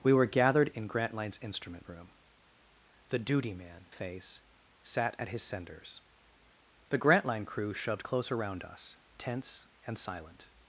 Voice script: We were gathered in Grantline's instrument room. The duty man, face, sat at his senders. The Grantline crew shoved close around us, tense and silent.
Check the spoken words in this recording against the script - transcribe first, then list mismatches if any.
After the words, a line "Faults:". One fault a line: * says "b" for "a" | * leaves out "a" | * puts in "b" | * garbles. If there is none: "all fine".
We were gathered in Grantline's instrument room. The duty man, face, sat at his senders. The Grantline crew shoved close around us, tense and silent.
Faults:
all fine